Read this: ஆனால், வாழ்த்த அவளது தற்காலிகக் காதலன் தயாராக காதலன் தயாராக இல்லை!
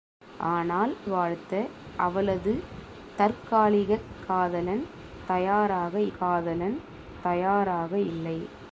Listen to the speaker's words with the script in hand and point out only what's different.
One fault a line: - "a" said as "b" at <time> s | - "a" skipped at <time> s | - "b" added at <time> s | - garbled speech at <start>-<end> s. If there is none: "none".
none